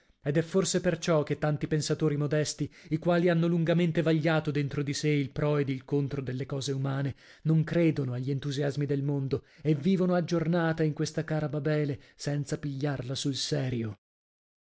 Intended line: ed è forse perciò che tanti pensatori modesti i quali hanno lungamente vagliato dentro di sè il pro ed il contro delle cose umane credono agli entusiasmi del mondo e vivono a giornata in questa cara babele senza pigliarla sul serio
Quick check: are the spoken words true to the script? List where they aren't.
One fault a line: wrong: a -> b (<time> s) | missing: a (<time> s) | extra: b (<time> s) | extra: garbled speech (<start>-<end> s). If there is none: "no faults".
extra: non (7.4 s)